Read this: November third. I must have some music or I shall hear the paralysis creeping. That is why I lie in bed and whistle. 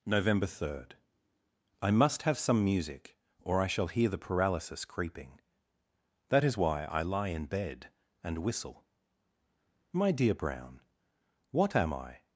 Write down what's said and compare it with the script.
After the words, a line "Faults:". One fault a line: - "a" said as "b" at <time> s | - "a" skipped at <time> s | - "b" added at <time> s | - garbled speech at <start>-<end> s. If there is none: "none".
November third. I must have some music or I shall hear the paralysis creeping. That is why I lie in bed and whistle. "My dear Brown, what am I
Faults:
- "My dear Brown what am I" added at 9.9 s